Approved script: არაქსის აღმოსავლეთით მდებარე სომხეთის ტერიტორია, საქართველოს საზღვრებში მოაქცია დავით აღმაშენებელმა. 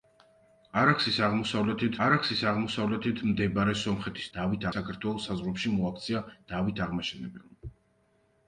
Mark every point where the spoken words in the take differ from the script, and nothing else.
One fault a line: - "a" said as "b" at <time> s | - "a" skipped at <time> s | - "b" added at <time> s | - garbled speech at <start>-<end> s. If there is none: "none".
- "არაქსის აღმოსავლეთით" added at 2.1 s
- "ტერიტორია" said as "დავით" at 4.4 s